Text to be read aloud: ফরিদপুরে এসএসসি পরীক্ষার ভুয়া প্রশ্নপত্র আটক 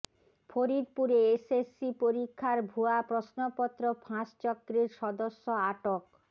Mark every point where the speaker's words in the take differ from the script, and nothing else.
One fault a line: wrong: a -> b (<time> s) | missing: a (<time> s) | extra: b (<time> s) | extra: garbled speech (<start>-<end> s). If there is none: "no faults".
extra: ফাঁস চক্রের সদস্য (4.0 s)